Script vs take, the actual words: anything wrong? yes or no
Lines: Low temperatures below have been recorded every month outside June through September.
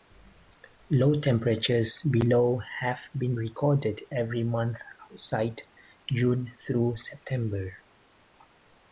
no